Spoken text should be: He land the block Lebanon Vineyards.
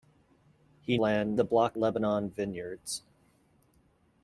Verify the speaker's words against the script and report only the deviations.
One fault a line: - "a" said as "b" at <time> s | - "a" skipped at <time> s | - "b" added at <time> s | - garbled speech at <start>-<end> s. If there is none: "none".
none